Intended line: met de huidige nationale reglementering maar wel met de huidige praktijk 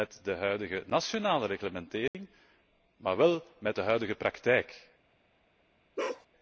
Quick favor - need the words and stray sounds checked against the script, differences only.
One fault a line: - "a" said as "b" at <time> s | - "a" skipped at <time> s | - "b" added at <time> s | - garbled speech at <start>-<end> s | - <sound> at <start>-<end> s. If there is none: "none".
- dropout at 2.1-2.1 s
- bark at 6.0-6.3 s